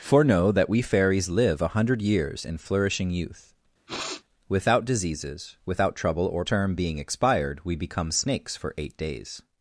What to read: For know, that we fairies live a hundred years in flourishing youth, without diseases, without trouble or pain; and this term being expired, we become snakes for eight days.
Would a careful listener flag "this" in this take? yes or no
yes